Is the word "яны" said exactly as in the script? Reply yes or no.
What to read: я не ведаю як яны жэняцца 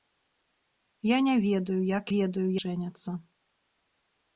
no